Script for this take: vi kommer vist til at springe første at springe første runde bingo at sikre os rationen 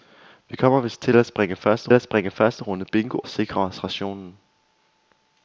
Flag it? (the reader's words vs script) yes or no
no